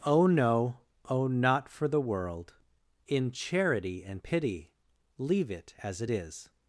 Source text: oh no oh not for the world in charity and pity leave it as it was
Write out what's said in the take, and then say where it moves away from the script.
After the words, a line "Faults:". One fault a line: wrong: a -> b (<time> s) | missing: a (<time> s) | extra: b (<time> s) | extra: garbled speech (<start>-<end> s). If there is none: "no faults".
oh no oh not for the world in charity and pity leave it as it is
Faults:
wrong: was -> is (6.1 s)